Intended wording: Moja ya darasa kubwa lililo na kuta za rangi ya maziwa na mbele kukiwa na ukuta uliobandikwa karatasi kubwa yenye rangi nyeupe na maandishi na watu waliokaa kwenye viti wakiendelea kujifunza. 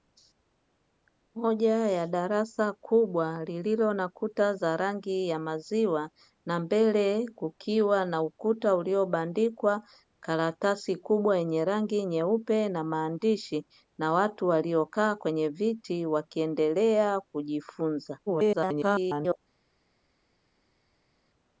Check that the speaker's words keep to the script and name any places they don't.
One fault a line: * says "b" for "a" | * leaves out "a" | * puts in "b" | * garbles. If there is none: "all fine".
* garbles